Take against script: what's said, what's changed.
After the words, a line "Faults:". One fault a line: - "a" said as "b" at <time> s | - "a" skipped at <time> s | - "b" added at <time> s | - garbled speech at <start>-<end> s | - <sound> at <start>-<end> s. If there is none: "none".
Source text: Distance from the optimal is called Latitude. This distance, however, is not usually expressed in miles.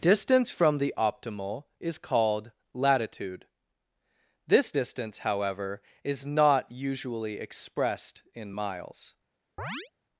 Distance from the optimal is called Latitude. This distance, however, is not usually expressed in miles.
Faults:
- chirp at 9.6-9.9 s